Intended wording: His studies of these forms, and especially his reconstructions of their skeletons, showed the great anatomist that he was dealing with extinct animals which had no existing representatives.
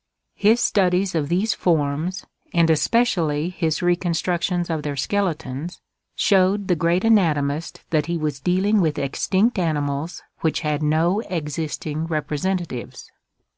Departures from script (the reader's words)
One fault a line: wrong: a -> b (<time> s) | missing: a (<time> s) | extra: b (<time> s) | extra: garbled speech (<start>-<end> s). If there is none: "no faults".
no faults